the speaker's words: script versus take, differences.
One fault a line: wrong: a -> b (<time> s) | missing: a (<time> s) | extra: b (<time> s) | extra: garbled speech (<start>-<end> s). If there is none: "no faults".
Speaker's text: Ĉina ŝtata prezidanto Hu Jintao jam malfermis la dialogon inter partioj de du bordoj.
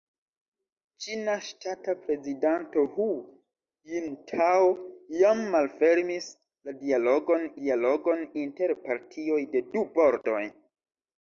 extra: dialogon (7.6 s)